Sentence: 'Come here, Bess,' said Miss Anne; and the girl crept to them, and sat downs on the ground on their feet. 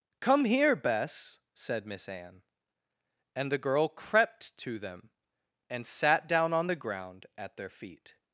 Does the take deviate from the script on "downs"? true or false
true